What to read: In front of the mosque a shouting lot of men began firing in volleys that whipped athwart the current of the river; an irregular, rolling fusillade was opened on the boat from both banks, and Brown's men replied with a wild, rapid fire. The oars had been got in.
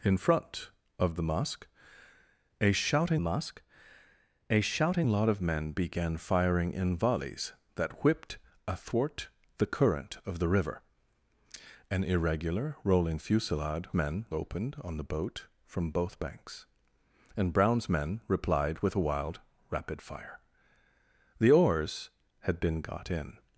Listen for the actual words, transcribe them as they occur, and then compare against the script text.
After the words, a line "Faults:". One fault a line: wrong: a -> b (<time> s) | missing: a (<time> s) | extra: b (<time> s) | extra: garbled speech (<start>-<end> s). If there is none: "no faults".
In front of the mosque a shouting mosque a shouting lot of men began firing in volleys that whipped athwart the current of the river; an irregular, rolling fusillade men opened on the boat from both banks, and Brown's men replied with a wild, rapid fire. The oars had been got in.
Faults:
extra: mosque a shouting (3.2 s)
wrong: was -> men (13.9 s)